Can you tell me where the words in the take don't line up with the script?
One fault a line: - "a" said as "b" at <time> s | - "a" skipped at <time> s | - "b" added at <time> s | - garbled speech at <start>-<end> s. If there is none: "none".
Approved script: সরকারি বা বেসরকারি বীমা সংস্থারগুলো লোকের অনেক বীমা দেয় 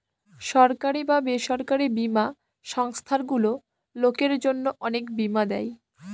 - "জন্য" added at 4.5 s